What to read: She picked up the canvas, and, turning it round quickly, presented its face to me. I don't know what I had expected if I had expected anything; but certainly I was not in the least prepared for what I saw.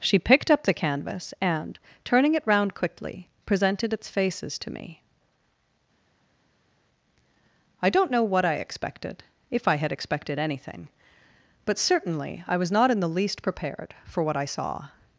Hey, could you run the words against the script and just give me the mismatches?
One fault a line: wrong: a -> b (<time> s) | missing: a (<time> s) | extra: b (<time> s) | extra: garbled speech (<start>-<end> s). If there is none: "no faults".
wrong: face -> faces (4.1 s)
missing: had (8.5 s)